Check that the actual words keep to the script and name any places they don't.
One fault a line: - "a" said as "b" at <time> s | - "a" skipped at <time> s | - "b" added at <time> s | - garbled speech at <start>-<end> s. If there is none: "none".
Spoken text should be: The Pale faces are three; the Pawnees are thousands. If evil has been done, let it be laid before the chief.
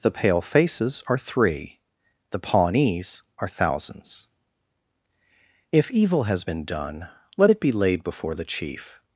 none